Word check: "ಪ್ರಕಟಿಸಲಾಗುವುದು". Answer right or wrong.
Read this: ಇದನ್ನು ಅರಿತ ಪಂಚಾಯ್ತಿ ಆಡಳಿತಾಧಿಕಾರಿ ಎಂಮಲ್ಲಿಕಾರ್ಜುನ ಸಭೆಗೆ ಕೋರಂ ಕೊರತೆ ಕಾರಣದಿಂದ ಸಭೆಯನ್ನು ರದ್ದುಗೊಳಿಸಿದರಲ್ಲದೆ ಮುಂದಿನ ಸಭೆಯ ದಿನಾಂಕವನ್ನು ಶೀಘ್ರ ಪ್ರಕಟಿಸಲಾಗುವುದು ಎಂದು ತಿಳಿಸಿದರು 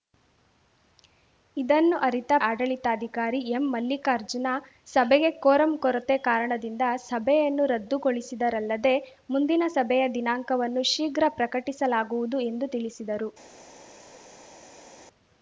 right